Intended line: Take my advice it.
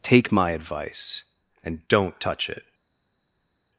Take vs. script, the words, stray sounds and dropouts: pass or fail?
fail